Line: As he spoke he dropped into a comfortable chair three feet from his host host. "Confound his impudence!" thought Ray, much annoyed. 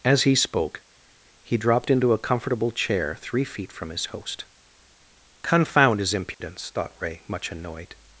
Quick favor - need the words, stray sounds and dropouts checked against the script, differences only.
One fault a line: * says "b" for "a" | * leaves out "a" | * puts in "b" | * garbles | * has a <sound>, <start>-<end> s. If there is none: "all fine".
* leaves out "host"
* has a dropout, 6.3-6.4 s